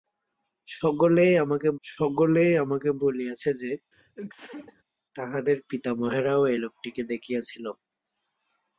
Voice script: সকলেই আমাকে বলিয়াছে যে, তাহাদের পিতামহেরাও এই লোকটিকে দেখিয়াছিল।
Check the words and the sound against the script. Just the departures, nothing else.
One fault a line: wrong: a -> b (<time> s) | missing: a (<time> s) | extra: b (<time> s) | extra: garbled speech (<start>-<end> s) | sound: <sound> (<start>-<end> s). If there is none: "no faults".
extra: সকলেই আমাকে (1.8 s)
sound: sneeze (3.9-4.8 s)